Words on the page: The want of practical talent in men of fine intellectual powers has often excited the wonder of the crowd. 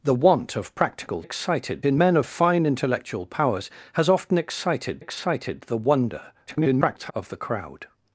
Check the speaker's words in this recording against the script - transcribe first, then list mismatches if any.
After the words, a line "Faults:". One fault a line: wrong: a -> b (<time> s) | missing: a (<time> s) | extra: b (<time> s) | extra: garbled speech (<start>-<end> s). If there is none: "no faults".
The want of practical excited in men of fine intellectual powers has often excited excited the wonder [garbled] of the crowd.
Faults:
wrong: talent -> excited (1.2 s)
extra: excited (5.0 s)
extra: garbled speech (6.5-7.1 s)